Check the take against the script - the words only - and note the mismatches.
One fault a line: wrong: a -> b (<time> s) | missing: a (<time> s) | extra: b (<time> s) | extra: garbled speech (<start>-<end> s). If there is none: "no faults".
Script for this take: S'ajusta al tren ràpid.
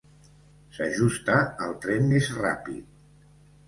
extra: més (2.1 s)